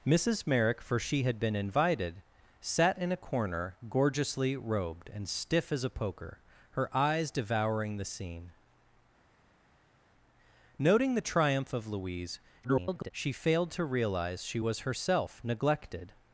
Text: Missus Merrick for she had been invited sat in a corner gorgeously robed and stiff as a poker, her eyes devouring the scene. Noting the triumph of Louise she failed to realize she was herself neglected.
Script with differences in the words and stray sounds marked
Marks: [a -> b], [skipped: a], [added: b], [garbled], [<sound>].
Missus Merrick for she had been invited sat in a corner gorgeously robed and stiff as a poker, her eyes devouring the scene. Noting the triumph of Louise [garbled] she failed to realize she was herself neglected.